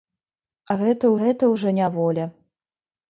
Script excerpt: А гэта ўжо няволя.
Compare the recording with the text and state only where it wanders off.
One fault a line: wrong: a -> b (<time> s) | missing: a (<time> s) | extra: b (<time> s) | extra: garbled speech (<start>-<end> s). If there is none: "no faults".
extra: гэта (1.2 s)